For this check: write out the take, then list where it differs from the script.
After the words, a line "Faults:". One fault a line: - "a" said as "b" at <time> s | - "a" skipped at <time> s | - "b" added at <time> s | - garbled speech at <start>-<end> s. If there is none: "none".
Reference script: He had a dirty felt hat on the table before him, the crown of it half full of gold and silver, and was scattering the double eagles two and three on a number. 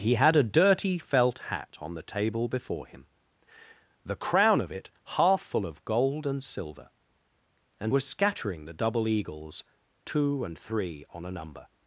He had a dirty felt hat on the table before him, the crown of it half full of gold and silver, and was scattering the double eagles two and three on a number.
Faults:
none